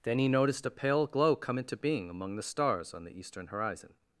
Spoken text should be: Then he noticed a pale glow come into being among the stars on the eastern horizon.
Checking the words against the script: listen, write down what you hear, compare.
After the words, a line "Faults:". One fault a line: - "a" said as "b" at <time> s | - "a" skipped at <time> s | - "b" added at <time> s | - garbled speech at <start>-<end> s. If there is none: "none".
Then he noticed a pale glow come into being among the stars on the eastern horizon.
Faults:
none